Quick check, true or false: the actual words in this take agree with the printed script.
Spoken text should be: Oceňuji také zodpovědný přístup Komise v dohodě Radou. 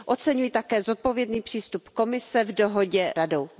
true